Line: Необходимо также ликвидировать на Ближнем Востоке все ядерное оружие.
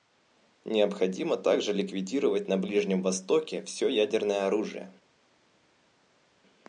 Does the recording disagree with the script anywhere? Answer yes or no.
no